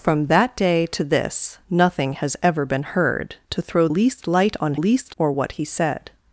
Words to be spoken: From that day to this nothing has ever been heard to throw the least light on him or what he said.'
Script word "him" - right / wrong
wrong